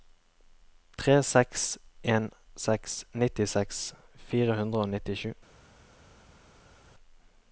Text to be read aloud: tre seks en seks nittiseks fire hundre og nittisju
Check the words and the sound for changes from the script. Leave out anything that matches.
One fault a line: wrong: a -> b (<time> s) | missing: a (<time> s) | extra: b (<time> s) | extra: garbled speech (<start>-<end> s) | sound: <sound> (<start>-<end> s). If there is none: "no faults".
no faults